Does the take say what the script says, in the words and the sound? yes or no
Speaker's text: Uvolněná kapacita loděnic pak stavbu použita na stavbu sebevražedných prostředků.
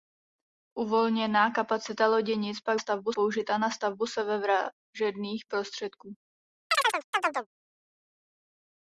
no